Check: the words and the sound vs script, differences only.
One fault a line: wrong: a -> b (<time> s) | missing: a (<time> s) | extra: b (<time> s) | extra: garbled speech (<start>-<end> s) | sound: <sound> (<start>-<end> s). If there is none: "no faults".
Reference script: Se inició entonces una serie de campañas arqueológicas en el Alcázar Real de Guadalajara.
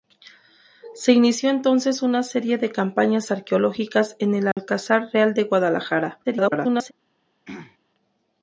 sound: dropout (4.5-4.6 s)
extra: garbled speech (6.2-6.9 s)
sound: throat clearing (7.5-7.8 s)